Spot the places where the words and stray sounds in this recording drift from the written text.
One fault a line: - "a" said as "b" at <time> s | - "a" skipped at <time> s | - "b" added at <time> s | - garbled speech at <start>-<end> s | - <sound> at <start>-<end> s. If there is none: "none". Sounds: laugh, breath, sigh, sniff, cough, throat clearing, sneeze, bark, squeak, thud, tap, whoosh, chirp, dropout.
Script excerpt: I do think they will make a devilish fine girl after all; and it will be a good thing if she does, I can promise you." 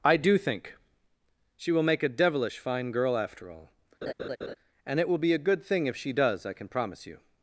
- "they" said as "she" at 1.6 s
- laugh at 4.0-4.6 s